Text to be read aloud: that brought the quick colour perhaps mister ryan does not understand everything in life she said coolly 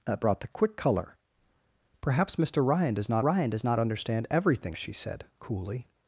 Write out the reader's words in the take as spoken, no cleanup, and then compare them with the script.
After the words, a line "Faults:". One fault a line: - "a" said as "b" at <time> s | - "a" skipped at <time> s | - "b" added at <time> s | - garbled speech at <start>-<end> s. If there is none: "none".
that brought the quick colour perhaps mister ryan does not ryan does not understand everything she said coolly
Faults:
- "ryan does not" added at 3.2 s
- "in life" skipped at 4.7 s